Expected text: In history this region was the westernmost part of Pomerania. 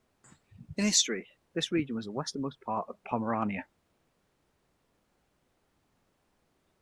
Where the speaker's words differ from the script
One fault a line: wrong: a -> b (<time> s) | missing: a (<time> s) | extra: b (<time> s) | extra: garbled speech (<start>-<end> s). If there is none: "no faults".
no faults